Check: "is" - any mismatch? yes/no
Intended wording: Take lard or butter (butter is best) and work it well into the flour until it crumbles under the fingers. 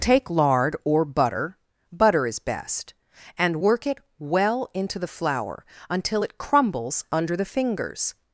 no